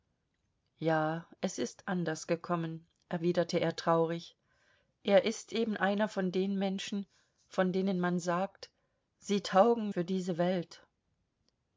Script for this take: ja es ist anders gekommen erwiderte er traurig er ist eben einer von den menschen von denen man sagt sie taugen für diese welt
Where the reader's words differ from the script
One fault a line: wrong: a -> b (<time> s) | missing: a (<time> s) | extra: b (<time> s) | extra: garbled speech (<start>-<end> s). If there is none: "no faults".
no faults